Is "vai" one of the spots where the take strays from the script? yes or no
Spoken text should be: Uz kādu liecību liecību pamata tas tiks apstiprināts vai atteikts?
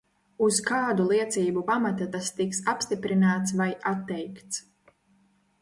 no